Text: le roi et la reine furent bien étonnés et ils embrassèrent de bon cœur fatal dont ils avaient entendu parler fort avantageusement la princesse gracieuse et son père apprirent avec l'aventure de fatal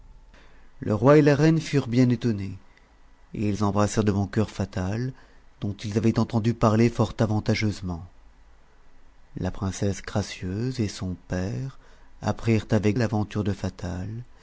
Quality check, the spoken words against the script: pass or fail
pass